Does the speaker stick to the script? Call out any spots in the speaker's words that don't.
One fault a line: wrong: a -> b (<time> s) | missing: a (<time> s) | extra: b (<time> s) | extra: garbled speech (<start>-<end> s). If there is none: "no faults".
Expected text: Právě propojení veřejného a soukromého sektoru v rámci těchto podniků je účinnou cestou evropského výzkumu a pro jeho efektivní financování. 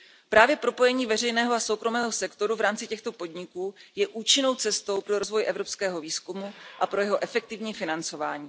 extra: pro rozvoj (5.0 s)